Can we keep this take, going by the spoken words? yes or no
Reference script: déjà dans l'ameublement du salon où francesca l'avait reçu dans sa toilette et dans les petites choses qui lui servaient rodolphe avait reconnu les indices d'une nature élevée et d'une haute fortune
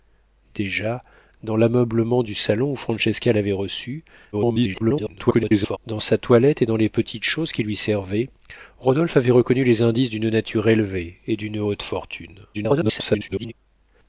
no